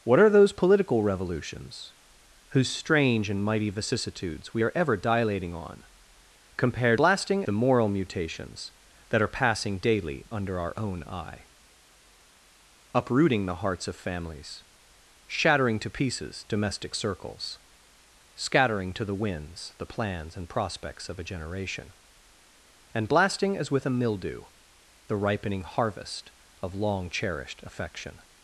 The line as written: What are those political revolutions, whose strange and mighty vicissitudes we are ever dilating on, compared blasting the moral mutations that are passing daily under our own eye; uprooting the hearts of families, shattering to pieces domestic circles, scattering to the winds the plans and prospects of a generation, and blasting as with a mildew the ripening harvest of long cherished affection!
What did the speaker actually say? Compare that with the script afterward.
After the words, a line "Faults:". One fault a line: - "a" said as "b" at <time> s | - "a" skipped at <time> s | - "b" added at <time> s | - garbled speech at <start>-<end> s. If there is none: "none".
What are those political revolutions, whose strange and mighty vicissitudes we are ever dilating on, compared blasting the moral mutations that are passing daily under our own eye; uprooting the hearts of families, shattering to pieces domestic circles, scattering to the winds the plans and prospects of a generation, and blasting as with a mildew the ripening harvest of long cherished affection!
Faults:
none